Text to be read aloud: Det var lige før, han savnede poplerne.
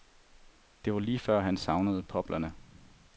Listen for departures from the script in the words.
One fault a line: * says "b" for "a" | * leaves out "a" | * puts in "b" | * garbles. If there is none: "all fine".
all fine